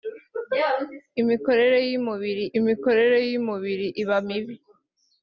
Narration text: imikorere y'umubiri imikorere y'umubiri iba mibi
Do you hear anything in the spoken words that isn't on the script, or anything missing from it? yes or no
no